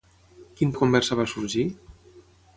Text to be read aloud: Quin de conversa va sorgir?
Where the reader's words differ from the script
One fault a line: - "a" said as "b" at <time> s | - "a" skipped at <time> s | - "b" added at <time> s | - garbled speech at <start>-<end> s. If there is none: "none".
none